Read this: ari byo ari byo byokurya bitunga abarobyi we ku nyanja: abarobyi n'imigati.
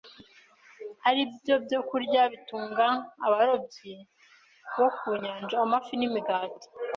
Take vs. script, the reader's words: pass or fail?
fail